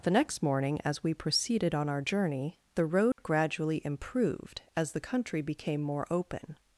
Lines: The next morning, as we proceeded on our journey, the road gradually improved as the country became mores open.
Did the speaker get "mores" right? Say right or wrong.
wrong